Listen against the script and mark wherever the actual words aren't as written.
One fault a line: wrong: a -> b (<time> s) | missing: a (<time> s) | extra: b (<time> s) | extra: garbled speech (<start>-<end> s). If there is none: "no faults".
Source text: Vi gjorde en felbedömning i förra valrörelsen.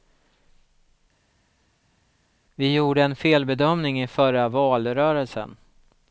no faults